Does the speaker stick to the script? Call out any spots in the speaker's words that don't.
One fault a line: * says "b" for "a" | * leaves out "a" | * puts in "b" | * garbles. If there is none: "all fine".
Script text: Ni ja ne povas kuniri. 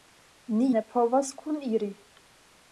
* leaves out "ja"